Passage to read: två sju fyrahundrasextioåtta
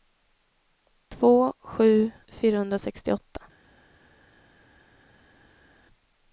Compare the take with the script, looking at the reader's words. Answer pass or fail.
pass